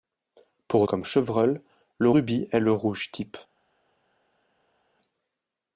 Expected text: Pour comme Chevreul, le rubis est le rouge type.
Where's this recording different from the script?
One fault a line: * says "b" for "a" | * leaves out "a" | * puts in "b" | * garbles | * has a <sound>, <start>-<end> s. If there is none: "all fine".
all fine